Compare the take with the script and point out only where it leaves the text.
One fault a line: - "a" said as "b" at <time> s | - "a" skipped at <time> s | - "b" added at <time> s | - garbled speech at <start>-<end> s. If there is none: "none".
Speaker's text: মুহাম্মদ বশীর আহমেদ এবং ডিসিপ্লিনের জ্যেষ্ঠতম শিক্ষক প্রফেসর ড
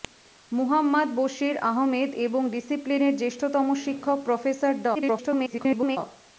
- garbled speech at 4.9-6.0 s